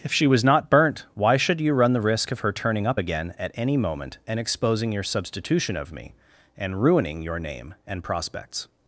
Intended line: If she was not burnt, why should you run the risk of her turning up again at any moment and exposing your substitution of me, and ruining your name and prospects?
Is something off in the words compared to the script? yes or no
no